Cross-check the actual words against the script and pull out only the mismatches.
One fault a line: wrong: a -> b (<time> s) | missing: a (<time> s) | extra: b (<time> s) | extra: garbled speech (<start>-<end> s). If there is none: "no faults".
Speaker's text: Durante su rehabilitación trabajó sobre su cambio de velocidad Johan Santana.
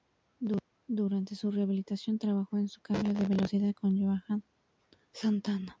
wrong: sobre -> en (2.6 s)
extra: con (3.7 s)